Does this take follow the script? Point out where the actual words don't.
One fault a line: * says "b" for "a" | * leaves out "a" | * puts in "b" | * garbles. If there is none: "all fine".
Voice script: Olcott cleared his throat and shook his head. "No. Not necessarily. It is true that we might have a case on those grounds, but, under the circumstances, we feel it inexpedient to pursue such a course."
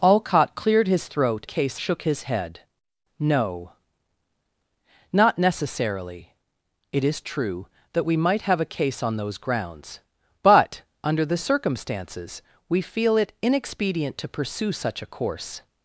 * says "case" for "and"